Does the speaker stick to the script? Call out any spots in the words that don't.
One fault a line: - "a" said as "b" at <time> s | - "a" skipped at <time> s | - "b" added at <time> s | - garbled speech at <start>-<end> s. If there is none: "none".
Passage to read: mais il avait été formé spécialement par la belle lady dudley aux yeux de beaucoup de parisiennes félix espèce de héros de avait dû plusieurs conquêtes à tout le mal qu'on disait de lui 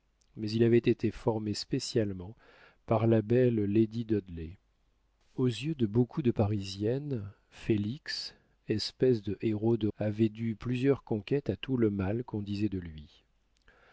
none